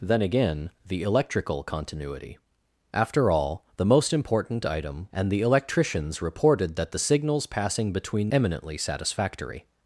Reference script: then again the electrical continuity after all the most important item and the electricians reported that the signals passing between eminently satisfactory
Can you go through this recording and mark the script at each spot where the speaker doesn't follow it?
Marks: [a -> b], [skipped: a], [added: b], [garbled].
then again the electrical continuity after all the most important item and the electricians reported that the signals passing between eminently satisfactory